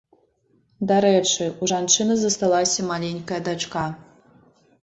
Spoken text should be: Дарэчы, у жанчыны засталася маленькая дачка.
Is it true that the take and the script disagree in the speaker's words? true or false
false